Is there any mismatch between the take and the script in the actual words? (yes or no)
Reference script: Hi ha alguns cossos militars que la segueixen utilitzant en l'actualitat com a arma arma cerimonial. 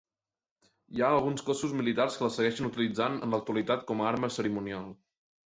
yes